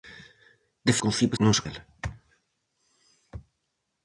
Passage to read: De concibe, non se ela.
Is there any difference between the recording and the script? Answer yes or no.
no